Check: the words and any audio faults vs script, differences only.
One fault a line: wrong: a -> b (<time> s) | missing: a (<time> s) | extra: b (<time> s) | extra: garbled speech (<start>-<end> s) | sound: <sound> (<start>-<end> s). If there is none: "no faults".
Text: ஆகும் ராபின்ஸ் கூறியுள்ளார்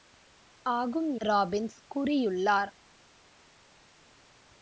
no faults